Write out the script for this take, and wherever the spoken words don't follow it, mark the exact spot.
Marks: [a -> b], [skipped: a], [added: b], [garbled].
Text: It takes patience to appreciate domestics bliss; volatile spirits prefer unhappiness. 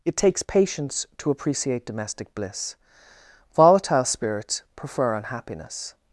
It takes patience to appreciate [domestics -> domestic] bliss; volatile spirits prefer unhappiness.